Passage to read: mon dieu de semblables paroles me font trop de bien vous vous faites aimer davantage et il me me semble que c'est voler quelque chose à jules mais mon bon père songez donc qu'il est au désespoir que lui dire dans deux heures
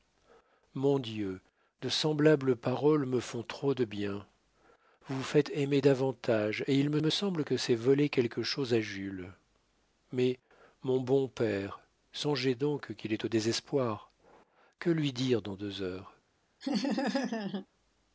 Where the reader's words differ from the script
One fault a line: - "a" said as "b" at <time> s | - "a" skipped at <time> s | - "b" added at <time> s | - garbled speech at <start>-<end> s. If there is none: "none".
none